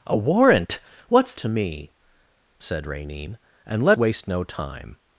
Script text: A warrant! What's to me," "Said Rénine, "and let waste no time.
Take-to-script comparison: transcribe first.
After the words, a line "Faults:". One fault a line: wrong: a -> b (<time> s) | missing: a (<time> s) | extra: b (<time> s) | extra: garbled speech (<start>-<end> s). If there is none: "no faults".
A warrant! What's to me," "Said Rénine, "and let waste no time.
Faults:
no faults